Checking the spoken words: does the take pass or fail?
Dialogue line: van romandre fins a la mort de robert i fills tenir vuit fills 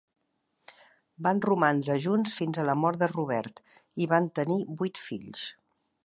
fail